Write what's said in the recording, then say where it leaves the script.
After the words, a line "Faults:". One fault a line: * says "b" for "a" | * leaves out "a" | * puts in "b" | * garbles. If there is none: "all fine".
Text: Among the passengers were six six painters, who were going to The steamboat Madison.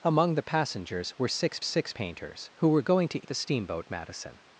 Among the passengers were six six painters, who were going to The steamboat Madison.
Faults:
all fine